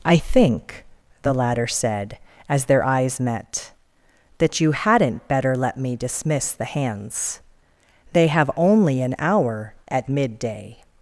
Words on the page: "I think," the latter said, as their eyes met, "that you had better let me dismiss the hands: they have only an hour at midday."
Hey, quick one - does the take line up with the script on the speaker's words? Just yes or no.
no